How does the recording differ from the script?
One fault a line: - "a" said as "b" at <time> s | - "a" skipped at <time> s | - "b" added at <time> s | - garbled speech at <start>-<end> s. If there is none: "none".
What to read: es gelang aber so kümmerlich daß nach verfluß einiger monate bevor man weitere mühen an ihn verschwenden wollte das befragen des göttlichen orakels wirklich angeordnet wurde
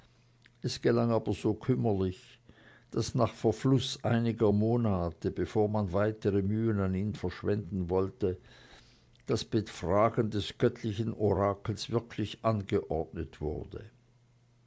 none